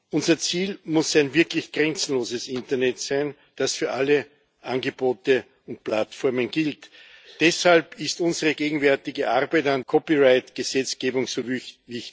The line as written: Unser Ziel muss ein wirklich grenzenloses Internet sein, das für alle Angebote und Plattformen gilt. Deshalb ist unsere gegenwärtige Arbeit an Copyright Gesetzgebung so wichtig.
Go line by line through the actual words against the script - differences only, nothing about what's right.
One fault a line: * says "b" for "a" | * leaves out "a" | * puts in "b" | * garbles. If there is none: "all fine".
all fine